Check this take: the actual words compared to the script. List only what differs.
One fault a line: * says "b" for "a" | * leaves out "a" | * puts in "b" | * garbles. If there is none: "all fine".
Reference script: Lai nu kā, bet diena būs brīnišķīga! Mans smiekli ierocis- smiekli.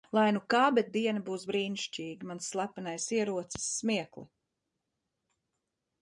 * says "slepenais" for "smiekli"